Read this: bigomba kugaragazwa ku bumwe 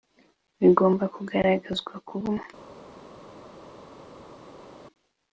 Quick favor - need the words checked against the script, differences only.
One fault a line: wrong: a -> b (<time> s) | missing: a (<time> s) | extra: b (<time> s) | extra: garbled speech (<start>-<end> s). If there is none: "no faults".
no faults